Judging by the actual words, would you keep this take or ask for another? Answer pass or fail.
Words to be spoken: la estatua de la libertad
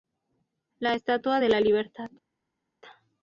pass